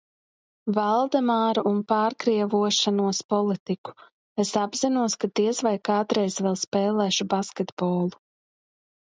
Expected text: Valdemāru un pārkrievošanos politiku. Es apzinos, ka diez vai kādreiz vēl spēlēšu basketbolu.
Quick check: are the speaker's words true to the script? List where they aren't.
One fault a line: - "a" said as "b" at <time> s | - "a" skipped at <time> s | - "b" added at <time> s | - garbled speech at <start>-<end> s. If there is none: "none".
none